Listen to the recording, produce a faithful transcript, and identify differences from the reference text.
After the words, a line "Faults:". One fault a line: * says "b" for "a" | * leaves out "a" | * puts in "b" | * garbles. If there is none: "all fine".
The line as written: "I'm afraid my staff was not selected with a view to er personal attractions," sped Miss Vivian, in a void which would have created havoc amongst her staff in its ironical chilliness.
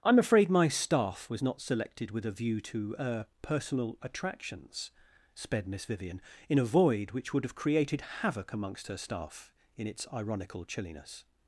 "I'm afraid my staff was not selected with a view to er personal attractions," sped Miss Vivian, in a void which would have created havoc amongst her staff in its ironical chilliness.
Faults:
all fine